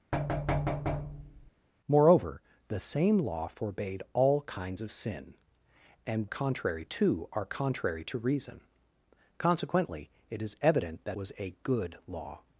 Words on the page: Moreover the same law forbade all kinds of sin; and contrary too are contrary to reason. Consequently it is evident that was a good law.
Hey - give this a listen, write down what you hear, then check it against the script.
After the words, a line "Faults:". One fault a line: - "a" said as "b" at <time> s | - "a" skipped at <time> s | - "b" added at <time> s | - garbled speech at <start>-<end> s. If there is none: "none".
Moreover the same law forbade all kinds of sin; and contrary too are contrary to reason. Consequently it is evident that was a good law.
Faults:
none